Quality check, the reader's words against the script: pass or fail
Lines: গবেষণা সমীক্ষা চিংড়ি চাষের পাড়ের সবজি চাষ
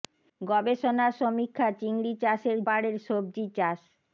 pass